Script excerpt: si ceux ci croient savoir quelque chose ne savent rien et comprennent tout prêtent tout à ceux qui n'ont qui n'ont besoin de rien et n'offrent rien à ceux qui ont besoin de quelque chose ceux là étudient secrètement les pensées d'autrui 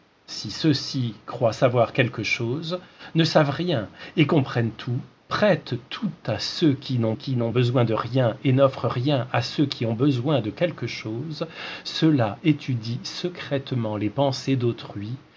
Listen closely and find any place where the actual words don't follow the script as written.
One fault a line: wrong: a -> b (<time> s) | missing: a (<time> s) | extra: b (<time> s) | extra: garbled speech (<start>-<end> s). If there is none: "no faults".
no faults